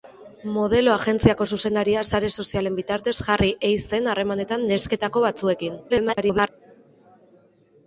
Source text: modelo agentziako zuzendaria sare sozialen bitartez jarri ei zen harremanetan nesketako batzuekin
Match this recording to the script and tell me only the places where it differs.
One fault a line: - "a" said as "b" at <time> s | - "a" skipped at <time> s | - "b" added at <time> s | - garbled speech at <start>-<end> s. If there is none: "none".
- garbled speech at 5.9-6.5 s